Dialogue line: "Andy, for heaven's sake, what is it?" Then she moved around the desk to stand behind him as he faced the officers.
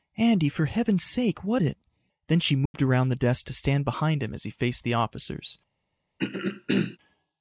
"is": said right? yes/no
no